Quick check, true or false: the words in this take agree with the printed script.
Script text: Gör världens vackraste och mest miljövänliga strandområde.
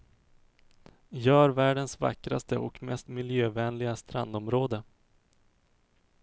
true